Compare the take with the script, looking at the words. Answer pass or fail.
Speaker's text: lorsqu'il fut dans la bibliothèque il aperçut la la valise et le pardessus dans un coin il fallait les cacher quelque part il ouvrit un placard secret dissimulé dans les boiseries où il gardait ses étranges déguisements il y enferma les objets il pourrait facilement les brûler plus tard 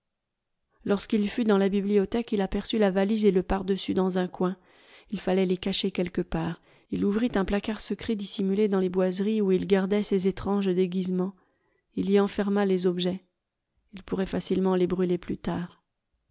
fail